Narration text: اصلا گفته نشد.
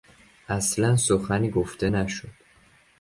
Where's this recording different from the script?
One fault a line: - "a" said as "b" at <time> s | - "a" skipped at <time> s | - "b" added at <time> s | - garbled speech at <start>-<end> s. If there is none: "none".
- "سخنی" added at 0.9 s